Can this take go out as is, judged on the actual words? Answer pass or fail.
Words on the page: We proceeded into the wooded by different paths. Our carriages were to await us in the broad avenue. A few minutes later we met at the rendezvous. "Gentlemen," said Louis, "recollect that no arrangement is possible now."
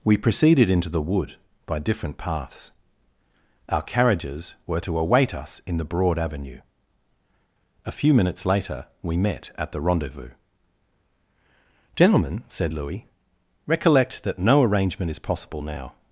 fail